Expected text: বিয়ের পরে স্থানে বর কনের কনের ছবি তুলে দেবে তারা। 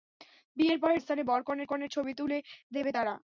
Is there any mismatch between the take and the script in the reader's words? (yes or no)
no